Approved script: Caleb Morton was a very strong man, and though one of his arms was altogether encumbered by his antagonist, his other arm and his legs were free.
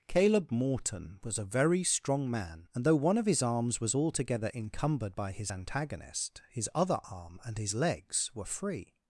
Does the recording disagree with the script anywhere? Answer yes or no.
no